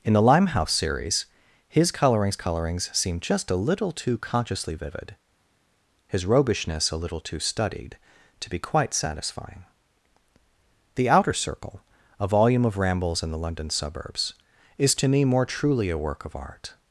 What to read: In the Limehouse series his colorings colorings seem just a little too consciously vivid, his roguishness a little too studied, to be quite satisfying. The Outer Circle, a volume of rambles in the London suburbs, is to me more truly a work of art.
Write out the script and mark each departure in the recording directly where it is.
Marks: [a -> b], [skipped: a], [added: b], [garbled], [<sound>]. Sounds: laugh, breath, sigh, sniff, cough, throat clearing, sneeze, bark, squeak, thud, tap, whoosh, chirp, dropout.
In the Limehouse series his colorings colorings seem just a little too consciously vivid, his roguishness a little too studied, to be quite satisfying. The Outer Circle, a volume of rambles in the London suburbs, is to me more truly a work of art.